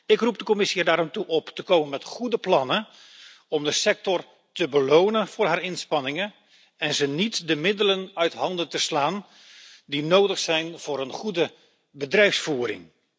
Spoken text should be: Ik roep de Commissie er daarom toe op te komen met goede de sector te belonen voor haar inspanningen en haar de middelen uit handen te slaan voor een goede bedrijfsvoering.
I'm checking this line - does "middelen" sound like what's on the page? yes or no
yes